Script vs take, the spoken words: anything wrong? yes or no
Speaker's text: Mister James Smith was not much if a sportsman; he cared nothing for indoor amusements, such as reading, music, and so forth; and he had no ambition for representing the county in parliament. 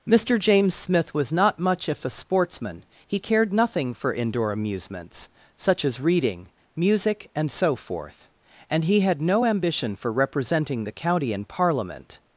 no